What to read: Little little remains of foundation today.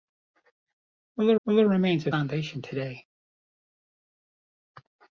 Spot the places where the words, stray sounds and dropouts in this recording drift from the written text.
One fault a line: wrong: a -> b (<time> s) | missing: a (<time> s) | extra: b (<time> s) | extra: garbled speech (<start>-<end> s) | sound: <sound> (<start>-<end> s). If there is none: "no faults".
no faults